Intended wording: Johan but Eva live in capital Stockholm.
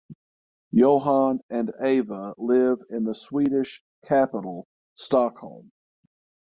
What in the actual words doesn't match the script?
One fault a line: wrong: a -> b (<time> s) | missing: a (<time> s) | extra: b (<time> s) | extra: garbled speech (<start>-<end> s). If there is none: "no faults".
wrong: but -> and (1.5 s)
extra: the Swedish (3.0 s)